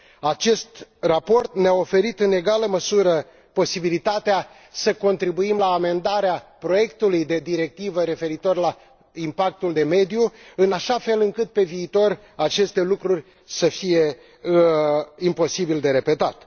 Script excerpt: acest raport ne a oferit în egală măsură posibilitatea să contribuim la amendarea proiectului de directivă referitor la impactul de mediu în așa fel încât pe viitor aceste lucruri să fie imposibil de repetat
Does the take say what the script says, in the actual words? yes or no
yes